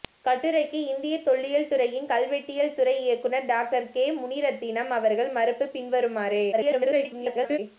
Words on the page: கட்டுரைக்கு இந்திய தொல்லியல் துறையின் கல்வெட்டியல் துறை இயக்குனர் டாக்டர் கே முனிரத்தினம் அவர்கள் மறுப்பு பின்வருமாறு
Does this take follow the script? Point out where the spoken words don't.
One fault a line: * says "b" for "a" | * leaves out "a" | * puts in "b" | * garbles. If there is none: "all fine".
* garbles